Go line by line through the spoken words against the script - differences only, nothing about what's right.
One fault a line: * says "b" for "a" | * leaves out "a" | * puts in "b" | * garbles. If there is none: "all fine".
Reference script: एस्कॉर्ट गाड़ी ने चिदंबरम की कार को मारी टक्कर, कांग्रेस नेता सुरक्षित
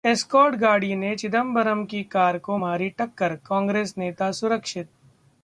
all fine